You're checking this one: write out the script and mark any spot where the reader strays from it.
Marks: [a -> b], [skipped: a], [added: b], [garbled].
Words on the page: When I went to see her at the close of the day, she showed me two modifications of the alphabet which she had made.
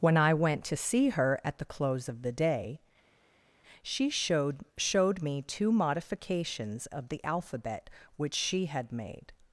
When I went to see her at the close of the day, she showed [added: showed] me two modifications of the alphabet which she had made.